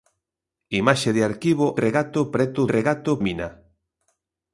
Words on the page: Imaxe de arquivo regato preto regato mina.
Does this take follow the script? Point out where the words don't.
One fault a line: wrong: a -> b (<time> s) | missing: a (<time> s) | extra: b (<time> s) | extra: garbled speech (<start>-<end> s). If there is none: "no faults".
no faults